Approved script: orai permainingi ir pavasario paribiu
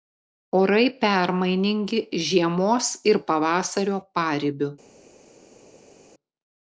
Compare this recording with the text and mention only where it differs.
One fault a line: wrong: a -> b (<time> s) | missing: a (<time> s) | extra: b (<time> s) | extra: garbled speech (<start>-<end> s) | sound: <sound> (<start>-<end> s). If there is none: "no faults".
extra: žiemos (2.3 s)